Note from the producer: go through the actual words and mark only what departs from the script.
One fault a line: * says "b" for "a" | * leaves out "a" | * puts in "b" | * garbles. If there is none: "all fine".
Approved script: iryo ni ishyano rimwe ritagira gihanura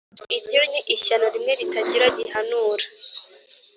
all fine